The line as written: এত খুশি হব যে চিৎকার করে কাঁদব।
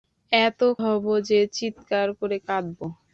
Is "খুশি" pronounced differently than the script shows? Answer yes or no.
yes